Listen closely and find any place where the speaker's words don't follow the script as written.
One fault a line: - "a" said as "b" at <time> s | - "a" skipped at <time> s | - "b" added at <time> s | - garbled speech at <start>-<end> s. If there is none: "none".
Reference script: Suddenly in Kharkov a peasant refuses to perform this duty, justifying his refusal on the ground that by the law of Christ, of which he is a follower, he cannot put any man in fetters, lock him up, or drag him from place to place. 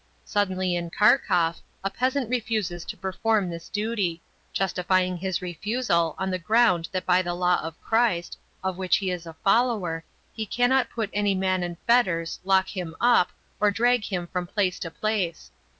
none